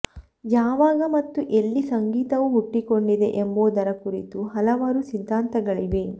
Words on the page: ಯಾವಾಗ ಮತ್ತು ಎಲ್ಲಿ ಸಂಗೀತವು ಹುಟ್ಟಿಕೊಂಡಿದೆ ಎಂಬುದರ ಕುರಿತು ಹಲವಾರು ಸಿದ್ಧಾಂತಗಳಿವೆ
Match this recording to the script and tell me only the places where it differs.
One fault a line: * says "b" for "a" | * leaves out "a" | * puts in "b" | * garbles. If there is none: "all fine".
all fine